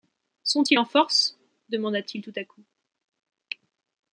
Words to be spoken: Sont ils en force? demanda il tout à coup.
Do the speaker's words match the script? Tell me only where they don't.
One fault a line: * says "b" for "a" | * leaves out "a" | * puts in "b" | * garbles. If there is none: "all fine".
* puts in "t"